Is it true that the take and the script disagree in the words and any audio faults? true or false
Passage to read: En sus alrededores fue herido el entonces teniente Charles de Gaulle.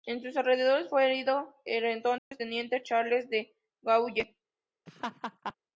true